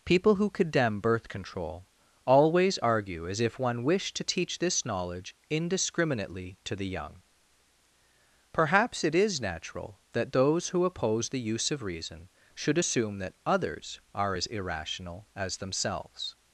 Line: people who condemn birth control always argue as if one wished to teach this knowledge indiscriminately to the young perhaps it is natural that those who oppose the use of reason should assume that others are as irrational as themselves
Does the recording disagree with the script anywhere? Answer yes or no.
no